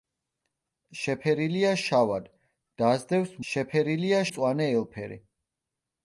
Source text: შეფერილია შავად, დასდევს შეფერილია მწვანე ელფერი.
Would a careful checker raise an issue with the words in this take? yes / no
no